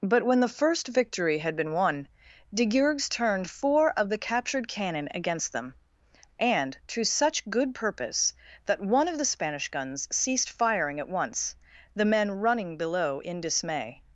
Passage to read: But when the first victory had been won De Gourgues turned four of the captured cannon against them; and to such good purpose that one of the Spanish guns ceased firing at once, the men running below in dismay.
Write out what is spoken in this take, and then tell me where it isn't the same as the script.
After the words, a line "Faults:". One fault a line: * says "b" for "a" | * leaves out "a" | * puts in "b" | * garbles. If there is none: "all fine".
But when the first victory had been won De Gourgues turned four of the captured cannon against them; and to such good purpose that one of the Spanish guns ceased firing at once, the men running below in dismay.
Faults:
all fine